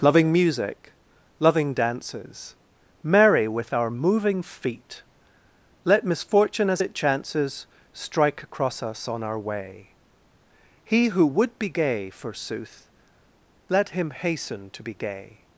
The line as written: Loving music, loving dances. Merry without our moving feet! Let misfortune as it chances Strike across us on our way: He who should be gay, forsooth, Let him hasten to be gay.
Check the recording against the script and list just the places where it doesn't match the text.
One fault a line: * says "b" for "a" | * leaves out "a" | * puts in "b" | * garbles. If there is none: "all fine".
* says "with" for "without"
* says "would" for "should"